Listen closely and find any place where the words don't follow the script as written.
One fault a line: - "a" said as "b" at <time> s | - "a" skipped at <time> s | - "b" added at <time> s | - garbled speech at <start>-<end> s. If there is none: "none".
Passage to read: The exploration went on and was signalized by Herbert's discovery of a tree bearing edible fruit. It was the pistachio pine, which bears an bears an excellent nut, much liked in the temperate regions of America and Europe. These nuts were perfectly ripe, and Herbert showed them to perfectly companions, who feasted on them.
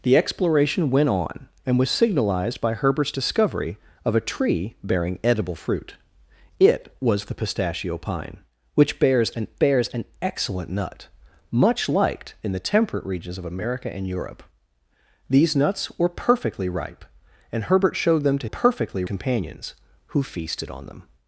none